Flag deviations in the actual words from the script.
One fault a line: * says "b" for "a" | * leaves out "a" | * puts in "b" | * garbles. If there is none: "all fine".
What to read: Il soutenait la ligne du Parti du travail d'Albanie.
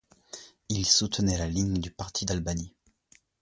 * leaves out "du travail"